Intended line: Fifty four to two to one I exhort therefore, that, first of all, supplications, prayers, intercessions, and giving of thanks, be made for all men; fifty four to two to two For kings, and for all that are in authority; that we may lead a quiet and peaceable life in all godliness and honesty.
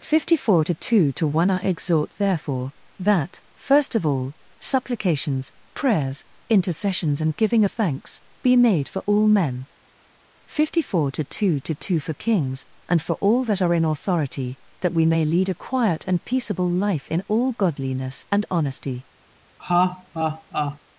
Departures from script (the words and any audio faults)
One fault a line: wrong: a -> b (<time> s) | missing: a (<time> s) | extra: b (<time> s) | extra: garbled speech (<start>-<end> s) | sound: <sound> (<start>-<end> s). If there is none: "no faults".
sound: laugh (19.6-20.8 s)